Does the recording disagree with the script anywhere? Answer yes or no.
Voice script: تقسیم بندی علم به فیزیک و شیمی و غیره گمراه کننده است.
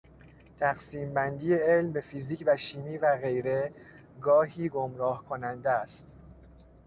yes